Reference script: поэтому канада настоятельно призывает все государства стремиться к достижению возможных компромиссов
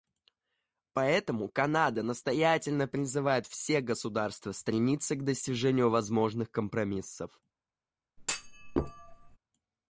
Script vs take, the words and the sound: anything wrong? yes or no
yes